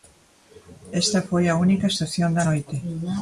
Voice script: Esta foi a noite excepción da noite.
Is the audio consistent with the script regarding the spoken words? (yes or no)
no